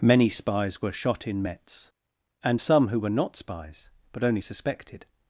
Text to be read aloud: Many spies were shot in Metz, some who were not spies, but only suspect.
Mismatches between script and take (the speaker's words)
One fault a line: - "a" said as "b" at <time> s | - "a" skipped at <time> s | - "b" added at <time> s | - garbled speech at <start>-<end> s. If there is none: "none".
- "and" added at 2.4 s
- "suspect" said as "suspected" at 4.4 s